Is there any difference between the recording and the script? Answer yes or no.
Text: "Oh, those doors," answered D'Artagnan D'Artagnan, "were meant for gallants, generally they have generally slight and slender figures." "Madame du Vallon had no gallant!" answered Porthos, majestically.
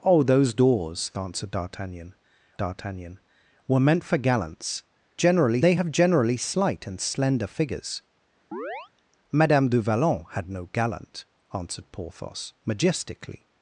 no